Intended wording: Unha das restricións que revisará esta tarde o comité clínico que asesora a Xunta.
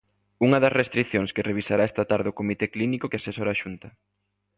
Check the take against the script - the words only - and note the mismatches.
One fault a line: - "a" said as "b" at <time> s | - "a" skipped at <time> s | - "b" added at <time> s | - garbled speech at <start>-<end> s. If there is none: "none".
none